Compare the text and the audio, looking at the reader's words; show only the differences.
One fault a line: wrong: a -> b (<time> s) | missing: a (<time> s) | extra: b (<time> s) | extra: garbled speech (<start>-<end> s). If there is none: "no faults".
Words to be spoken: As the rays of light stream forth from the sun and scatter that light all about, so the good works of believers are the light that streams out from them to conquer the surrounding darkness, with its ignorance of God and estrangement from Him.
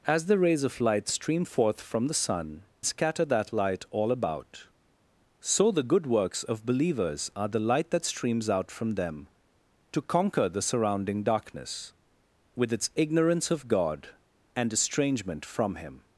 missing: and (2.6 s)